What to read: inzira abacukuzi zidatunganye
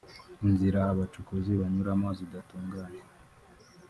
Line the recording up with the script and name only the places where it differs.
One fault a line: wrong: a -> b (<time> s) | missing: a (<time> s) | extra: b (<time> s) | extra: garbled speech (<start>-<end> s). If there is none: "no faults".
extra: banyuramo (1.6 s)